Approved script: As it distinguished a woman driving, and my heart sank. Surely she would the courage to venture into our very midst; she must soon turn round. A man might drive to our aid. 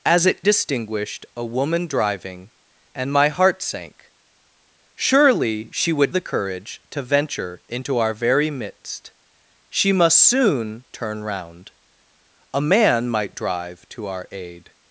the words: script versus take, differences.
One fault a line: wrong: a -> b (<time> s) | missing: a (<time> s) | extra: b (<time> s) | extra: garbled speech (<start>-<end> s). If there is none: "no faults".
no faults